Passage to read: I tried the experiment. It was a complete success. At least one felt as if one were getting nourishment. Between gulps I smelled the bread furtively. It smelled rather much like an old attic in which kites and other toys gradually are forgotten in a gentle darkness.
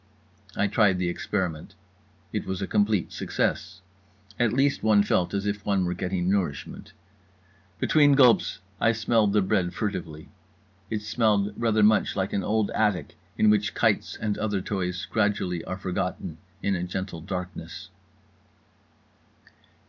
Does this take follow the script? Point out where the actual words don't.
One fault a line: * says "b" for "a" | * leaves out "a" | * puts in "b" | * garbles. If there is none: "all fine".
all fine